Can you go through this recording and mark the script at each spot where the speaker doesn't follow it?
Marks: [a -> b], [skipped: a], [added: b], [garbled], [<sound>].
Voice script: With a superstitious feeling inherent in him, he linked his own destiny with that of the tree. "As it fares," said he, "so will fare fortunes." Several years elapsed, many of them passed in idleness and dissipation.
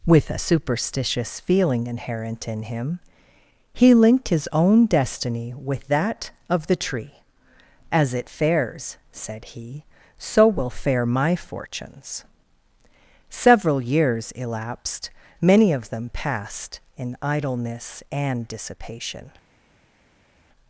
With a superstitious feeling inherent in him, he linked his own destiny with that of the tree. "As it fares," said he, "so will fare [added: my] fortunes." Several years elapsed, many of them passed in idleness and dissipation.